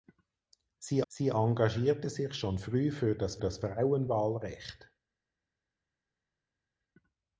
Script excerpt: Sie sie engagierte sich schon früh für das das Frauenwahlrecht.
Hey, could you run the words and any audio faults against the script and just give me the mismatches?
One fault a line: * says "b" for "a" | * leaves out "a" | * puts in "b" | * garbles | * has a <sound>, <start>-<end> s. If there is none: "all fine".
all fine